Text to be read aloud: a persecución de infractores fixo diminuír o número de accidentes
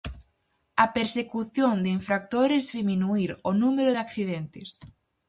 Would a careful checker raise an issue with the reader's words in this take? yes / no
yes